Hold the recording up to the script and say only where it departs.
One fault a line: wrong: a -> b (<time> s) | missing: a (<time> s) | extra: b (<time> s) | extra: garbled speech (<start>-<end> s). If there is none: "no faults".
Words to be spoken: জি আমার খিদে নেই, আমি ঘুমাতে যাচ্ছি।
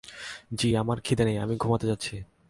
no faults